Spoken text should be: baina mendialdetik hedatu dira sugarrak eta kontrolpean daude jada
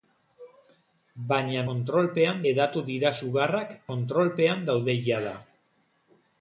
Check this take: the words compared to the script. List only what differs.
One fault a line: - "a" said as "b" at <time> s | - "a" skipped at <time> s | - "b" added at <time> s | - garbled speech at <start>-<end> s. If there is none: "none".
- "mendialdetik" said as "kontrolpean" at 1.7 s
- "eta" skipped at 3.7 s